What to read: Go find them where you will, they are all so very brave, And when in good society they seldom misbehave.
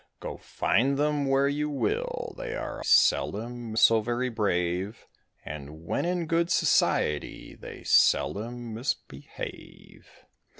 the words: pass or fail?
fail